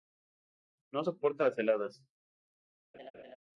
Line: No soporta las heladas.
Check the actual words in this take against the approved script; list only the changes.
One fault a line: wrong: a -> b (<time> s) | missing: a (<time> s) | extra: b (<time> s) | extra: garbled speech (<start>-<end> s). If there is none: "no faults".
no faults